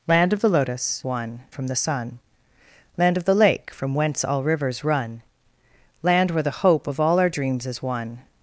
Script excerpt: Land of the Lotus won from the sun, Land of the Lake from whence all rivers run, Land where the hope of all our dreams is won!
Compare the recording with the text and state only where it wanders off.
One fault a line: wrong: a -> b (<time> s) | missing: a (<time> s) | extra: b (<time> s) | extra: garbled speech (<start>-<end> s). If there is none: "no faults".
no faults